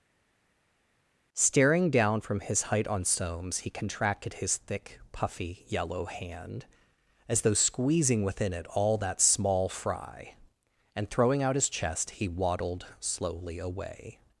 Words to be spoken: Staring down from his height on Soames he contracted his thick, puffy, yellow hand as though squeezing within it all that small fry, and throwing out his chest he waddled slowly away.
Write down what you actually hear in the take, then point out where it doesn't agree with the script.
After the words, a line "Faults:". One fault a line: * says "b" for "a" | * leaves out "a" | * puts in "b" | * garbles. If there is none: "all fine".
Staring down from his height on Soames he contracted his thick, puffy, yellow hand as though squeezing within it all that small fry, and throwing out his chest he waddled slowly away.
Faults:
all fine